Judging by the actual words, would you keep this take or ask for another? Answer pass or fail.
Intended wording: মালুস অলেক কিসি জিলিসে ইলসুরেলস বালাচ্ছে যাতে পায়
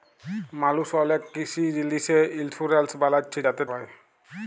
pass